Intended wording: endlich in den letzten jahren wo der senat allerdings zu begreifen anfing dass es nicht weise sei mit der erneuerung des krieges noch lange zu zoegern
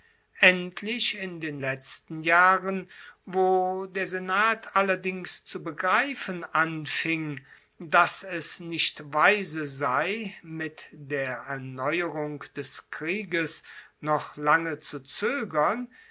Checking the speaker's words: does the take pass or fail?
pass